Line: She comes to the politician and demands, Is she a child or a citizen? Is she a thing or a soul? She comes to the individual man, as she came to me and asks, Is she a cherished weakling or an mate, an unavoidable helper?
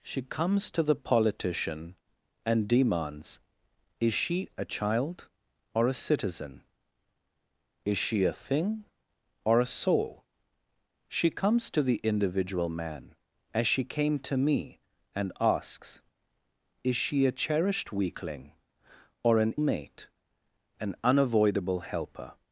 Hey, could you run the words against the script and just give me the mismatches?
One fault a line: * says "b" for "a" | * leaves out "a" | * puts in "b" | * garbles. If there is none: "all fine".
all fine